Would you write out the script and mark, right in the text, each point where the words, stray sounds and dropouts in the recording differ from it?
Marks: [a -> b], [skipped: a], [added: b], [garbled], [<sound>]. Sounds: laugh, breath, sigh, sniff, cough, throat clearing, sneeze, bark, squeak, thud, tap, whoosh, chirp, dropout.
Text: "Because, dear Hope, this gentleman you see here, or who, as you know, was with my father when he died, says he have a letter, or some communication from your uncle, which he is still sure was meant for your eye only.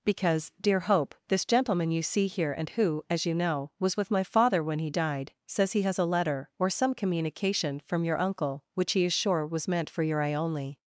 "Because, dear Hope, this gentleman you see here, [or -> and] who, as you know, was with my father when he died, says he [have -> has] a letter, or some communication from your uncle, which he is [skipped: still] sure was meant for your eye only.